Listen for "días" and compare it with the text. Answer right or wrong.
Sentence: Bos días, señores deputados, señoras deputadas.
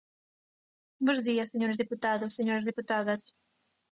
right